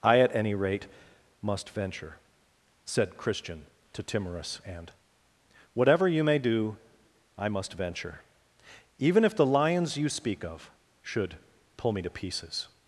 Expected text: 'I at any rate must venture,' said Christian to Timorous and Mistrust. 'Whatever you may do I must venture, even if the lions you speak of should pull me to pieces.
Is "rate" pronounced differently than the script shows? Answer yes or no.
no